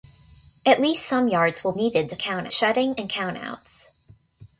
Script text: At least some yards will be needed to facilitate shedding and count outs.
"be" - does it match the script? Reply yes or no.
no